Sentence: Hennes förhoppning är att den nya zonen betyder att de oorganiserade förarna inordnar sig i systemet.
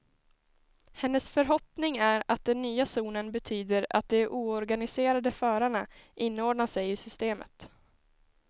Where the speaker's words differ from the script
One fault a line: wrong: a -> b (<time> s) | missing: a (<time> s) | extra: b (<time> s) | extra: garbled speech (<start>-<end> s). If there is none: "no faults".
no faults